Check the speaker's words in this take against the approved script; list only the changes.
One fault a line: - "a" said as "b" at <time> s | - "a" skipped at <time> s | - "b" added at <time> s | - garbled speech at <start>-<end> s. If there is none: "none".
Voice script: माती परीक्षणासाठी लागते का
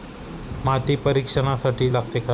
none